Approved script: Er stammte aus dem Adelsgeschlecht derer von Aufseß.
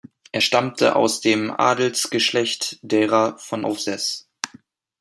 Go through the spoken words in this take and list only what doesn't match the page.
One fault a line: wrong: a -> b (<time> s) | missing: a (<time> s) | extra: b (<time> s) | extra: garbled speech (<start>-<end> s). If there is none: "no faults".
no faults